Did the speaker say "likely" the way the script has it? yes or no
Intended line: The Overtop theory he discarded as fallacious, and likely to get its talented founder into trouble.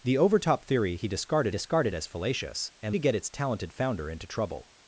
no